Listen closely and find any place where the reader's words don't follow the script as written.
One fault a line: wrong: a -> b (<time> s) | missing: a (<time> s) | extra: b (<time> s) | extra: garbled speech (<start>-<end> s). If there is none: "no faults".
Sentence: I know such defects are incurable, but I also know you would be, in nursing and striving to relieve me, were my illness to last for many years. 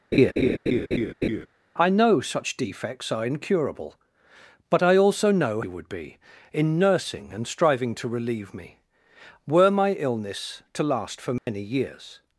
no faults